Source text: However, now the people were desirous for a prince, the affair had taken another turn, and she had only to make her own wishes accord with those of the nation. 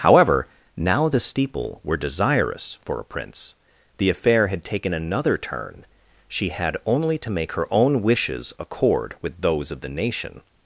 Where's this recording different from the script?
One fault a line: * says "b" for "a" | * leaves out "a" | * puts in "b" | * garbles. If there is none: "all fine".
* says "steeple" for "people"
* leaves out "and"